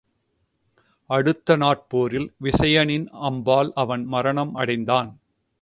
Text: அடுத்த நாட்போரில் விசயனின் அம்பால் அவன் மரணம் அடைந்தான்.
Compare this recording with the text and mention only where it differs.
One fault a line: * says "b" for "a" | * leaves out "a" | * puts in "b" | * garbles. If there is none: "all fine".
all fine